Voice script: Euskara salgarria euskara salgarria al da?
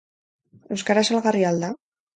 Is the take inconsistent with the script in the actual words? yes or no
yes